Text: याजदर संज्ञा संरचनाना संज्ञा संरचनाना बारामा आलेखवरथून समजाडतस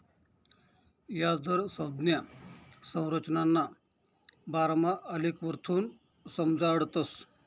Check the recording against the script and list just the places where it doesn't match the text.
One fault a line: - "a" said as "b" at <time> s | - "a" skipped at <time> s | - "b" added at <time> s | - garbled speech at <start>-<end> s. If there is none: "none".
- "संज्ञा संरचनाना" skipped at 3.6 s